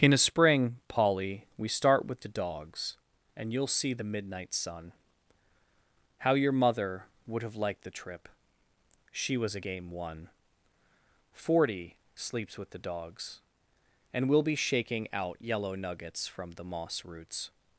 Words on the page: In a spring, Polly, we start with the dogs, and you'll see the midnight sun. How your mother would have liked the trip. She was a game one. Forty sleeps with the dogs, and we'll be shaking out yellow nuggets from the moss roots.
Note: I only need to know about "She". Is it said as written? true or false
true